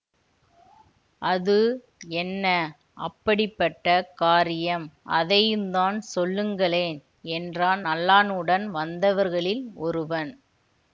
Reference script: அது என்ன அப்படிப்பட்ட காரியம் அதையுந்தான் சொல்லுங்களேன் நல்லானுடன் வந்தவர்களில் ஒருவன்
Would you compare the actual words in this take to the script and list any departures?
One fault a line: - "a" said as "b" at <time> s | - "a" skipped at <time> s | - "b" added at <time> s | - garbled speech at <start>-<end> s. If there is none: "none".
- "என்றான்" added at 7.3 s